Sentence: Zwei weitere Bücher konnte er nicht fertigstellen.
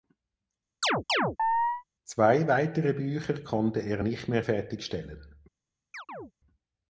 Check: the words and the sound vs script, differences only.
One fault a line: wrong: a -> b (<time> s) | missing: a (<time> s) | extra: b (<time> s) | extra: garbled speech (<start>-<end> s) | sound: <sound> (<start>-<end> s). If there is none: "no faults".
sound: chirp (0.8-1.8 s)
extra: mehr (4.3 s)
sound: chirp (5.9-6.3 s)